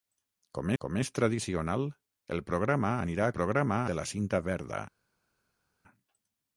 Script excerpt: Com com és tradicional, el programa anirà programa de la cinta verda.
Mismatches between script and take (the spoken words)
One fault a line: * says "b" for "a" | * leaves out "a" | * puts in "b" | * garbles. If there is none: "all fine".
all fine